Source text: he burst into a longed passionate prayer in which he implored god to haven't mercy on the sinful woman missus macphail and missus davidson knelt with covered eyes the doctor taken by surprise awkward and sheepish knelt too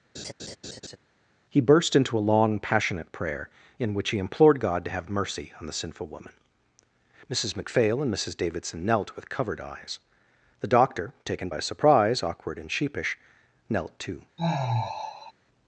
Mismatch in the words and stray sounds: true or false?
true